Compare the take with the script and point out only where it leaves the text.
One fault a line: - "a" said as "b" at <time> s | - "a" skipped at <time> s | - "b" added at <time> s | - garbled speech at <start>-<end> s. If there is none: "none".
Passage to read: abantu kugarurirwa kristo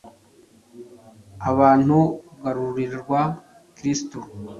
none